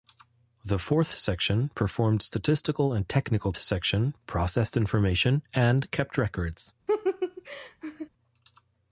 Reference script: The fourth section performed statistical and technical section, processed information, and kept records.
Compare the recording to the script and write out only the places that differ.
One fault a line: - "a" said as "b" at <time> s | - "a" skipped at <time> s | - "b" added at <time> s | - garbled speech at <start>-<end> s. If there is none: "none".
none